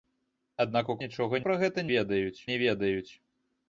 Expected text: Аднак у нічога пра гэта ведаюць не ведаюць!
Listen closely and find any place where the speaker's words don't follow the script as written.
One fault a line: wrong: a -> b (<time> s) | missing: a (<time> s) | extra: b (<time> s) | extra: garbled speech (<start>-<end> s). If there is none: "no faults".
no faults